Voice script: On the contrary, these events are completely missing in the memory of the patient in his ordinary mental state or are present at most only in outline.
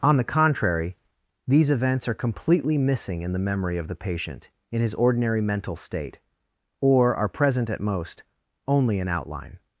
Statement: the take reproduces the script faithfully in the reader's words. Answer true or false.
true